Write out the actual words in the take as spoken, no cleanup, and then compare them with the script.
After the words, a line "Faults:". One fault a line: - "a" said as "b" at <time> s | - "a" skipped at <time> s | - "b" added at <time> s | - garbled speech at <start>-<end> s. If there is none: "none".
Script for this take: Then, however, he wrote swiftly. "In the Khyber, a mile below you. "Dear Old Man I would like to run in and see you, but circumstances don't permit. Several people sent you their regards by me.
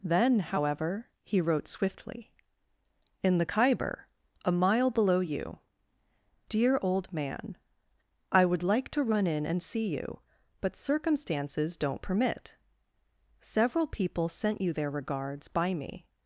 Then, however, he wrote swiftly. "In the Khyber, a mile below you. "Dear Old Man I would like to run in and see you, but circumstances don't permit. Several people sent you their regards by me.
Faults:
none